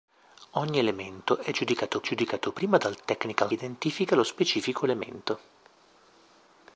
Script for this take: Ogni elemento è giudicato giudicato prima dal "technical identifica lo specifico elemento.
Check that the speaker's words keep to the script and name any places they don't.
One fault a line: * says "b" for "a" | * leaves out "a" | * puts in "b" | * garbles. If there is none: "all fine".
all fine